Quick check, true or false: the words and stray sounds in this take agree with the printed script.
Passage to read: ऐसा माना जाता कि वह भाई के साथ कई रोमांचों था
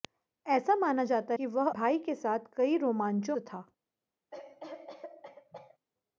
false